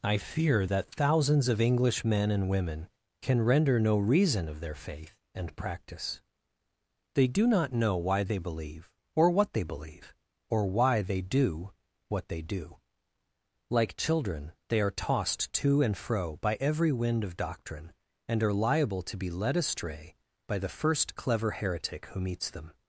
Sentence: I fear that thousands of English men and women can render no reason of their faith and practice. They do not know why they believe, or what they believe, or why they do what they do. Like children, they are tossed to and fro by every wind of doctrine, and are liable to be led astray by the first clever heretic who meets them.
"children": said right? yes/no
yes